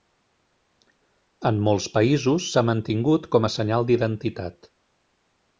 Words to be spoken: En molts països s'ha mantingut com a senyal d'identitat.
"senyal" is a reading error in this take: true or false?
false